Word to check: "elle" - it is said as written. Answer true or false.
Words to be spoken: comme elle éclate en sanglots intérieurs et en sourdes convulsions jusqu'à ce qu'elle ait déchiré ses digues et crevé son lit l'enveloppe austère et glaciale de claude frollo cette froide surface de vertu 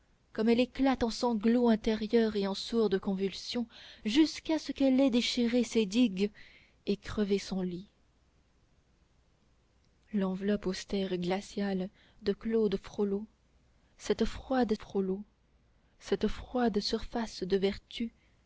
true